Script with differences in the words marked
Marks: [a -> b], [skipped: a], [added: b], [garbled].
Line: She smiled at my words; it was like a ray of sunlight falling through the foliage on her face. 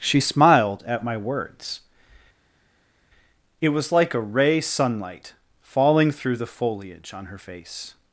She smiled at my words; it was like a ray [skipped: of] sunlight falling through the foliage on her face.